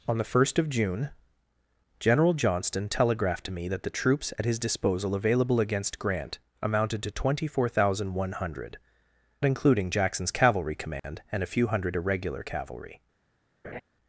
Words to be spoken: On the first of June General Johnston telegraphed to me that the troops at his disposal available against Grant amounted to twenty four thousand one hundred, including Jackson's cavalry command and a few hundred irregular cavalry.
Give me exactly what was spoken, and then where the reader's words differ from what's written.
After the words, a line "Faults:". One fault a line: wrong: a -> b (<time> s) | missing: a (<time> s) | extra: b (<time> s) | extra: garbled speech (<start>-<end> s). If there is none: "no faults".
On the first of June General Johnston telegraphed to me that the troops at his disposal available against Grant amounted to twenty four thousand one hundred, including Jackson's cavalry command and a few hundred irregular cavalry.
Faults:
no faults